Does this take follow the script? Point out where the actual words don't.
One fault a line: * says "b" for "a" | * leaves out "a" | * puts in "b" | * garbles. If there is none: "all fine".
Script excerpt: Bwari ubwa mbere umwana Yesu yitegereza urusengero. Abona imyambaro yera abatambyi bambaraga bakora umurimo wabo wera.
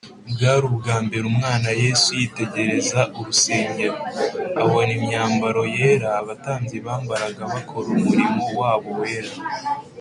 all fine